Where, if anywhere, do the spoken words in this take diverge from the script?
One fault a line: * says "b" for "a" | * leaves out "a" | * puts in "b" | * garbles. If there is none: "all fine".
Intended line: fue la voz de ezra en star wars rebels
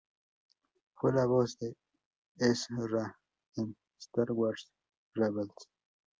all fine